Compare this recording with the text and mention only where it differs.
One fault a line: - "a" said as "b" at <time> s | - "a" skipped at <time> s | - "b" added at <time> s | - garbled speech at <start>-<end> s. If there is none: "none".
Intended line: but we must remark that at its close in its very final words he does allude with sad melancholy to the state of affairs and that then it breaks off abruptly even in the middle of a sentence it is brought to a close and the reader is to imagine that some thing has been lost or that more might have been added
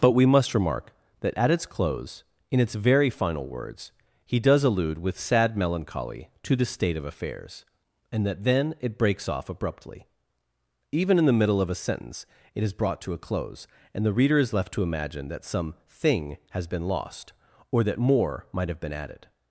- "left" added at 14.5 s